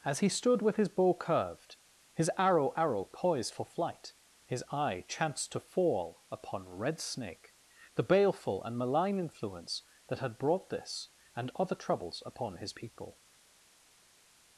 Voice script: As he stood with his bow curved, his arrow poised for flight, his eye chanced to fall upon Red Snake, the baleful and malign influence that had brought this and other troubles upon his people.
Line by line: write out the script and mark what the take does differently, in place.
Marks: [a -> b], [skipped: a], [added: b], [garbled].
As he stood with his bow curved, his arrow [added: arrow] poised for flight, his eye chanced to fall upon Red Snake, the baleful and malign influence that had brought this and other troubles upon his people.